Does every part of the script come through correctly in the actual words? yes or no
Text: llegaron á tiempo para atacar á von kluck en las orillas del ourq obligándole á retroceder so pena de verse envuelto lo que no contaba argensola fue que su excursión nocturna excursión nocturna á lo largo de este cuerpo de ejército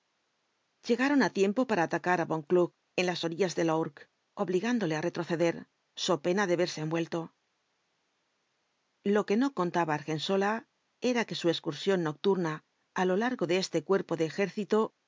no